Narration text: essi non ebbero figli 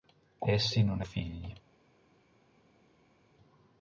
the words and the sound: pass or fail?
fail